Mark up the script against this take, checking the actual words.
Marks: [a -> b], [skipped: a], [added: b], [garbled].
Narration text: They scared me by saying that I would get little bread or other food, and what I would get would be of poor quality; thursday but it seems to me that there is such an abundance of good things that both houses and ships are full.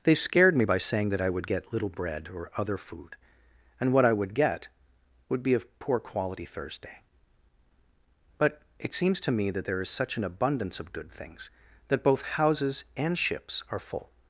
They scared me by saying that I would get little bread or other food, and what I would get would be of poor quality; thursday but it seems to me that there is such an abundance of good things that both houses and ships are full.